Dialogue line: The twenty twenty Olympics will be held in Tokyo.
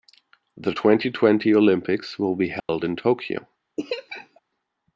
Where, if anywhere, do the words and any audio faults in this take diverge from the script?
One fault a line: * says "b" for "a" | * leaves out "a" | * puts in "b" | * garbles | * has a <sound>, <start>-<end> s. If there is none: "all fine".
* has a dropout, 2.6-2.7 s
* has a laugh, 3.8-4.4 s